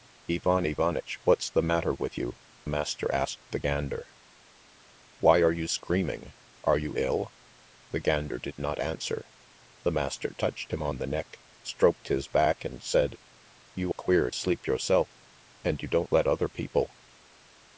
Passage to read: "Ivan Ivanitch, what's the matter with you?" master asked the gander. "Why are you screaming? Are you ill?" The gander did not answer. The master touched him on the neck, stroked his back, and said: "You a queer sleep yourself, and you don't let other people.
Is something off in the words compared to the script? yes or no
no